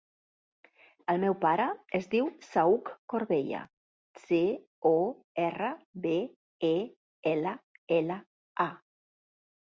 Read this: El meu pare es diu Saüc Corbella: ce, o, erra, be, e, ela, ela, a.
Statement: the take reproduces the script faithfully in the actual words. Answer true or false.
true